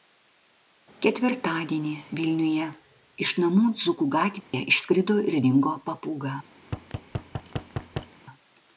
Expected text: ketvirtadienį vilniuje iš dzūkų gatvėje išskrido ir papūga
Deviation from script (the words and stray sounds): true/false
true